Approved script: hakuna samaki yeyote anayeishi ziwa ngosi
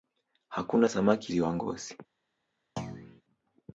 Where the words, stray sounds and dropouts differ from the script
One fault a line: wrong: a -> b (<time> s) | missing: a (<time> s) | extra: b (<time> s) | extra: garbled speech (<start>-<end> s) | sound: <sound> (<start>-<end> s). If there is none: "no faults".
missing: yeyote anayeishi (1.3 s)
sound: thud (2.8-3.2 s)